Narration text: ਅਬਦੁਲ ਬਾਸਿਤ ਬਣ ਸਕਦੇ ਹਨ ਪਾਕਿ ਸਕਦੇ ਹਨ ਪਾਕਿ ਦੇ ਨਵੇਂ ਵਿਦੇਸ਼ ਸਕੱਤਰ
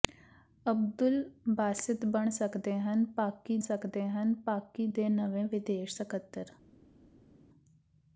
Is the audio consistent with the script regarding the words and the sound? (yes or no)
yes